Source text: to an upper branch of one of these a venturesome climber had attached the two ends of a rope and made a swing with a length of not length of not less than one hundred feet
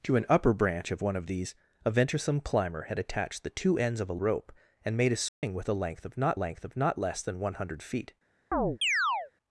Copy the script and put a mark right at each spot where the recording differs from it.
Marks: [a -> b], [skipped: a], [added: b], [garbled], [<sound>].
to an upper branch of one of these a venturesome climber had attached the two ends of a rope and made a swing [dropout] with a length of not length of not less than one hundred feet [chirp]